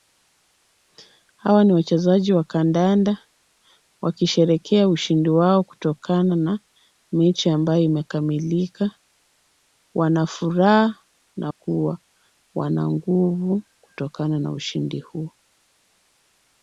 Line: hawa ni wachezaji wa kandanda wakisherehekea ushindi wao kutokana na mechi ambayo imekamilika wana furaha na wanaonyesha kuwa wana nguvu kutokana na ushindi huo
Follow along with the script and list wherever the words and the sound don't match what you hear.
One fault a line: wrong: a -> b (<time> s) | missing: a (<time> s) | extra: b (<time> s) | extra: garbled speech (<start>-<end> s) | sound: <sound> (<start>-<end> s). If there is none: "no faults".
missing: wanaonyesha (11.5 s)